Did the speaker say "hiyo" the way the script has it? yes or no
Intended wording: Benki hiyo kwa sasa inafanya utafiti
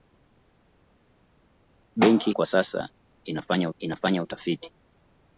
no